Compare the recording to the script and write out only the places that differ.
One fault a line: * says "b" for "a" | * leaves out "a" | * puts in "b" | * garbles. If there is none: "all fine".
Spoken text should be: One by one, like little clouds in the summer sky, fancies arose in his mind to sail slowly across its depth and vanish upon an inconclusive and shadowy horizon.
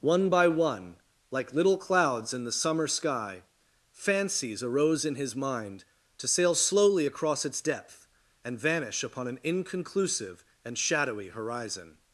all fine